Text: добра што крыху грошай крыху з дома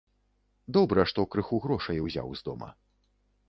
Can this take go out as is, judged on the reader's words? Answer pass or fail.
fail